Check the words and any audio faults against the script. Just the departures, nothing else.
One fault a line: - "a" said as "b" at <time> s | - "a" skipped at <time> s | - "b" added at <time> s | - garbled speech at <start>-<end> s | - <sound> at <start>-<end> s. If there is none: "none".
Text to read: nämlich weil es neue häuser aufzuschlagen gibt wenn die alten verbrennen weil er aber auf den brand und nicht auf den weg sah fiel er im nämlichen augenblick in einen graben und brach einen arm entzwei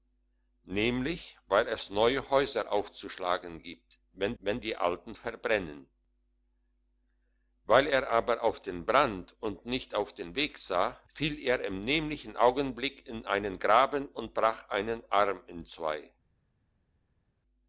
- "wenn" added at 4.4 s